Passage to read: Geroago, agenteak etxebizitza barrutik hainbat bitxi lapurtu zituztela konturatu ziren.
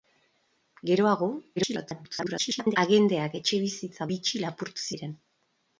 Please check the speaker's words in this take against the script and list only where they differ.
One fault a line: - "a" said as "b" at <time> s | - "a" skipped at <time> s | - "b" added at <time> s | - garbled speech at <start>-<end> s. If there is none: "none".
- garbled speech at 1.6-2.8 s
- "barrutik hainbat" skipped at 4.1 s
- "zituztela konturatu" skipped at 4.9 s